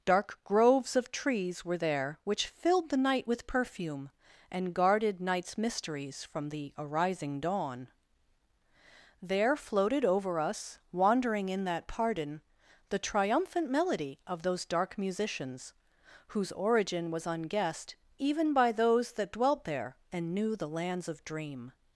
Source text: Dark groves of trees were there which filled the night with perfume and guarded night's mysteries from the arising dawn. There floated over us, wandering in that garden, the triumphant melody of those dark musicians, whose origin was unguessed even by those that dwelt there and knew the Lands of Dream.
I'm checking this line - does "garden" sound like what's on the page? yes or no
no